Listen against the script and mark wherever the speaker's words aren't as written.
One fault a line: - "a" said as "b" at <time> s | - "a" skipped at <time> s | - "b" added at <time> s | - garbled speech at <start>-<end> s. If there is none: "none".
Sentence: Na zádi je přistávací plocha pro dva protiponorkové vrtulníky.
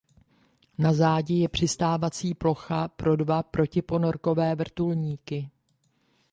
none